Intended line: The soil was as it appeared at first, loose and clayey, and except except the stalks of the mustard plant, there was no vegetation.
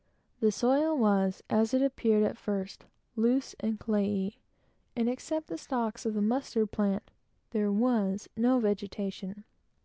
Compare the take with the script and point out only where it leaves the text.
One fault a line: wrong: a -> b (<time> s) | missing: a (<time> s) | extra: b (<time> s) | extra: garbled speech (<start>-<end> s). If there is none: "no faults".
missing: except (5.5 s)